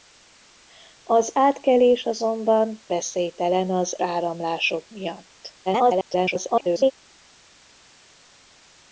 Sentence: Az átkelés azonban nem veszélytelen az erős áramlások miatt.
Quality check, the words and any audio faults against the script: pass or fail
fail